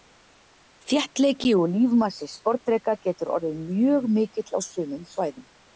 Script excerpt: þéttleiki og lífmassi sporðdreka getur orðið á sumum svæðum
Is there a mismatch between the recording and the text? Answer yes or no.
yes